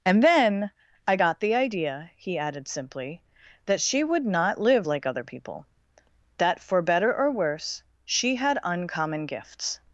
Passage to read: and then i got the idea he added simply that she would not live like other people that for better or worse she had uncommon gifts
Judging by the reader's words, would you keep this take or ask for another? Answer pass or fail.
pass